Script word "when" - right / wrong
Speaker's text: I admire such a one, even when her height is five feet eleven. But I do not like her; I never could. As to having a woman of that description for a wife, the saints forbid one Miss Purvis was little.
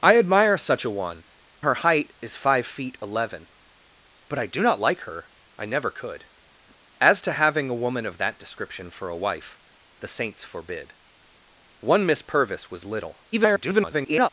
wrong